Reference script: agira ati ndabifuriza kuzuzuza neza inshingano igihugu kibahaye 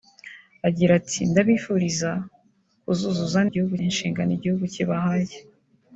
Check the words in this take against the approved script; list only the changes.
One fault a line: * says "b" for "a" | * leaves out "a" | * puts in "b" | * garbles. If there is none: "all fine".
* says "igihugu" for "neza"